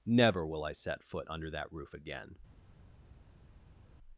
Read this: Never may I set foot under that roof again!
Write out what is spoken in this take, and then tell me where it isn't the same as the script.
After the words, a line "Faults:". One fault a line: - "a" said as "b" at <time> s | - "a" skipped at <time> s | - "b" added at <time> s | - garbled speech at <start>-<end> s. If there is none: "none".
Never will I set foot under that roof again!
Faults:
- "may" said as "will" at 0.5 s